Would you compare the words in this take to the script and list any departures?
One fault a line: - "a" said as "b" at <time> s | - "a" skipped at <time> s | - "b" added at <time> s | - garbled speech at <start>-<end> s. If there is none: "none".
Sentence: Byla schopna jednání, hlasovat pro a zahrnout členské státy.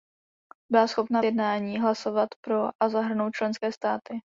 none